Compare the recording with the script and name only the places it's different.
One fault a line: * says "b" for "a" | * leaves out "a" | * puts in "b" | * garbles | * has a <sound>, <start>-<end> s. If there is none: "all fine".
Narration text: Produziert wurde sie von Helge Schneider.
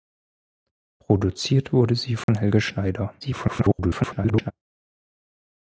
* has a dropout, 2.2-2.3 s
* garbles